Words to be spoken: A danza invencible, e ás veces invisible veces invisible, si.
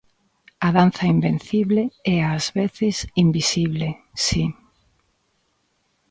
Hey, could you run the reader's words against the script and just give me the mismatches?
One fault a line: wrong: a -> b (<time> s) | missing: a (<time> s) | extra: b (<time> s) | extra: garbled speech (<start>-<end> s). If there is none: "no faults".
missing: veces invisible (3.9 s)